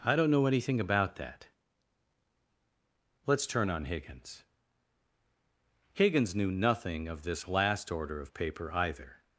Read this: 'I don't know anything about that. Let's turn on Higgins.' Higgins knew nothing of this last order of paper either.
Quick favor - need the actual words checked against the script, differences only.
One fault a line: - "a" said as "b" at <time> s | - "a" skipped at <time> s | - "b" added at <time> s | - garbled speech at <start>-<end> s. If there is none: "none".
none